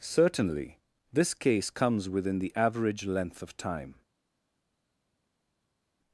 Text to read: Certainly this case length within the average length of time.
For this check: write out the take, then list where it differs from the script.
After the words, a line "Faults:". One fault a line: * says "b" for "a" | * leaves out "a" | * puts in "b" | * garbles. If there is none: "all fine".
Certainly this case comes within the average length of time.
Faults:
* says "comes" for "length"